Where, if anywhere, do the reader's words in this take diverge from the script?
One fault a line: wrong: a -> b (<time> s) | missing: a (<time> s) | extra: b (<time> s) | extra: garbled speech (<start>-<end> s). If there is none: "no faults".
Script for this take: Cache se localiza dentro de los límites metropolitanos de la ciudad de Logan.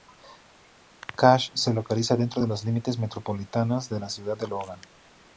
no faults